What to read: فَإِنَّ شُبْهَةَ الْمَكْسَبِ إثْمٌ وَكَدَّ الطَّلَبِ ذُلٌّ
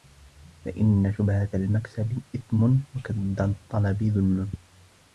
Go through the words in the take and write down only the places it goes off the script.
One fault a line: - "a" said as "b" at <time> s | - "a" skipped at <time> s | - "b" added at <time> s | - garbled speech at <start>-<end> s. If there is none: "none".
none